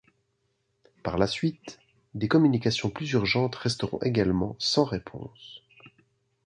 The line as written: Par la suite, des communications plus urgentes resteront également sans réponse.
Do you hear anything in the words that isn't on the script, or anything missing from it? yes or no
no